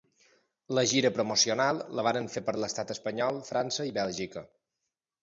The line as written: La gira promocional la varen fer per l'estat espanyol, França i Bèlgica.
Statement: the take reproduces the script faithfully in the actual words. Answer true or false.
true